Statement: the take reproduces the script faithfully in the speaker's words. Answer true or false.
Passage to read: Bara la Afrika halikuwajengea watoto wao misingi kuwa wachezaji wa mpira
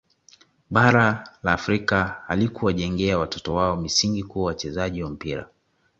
true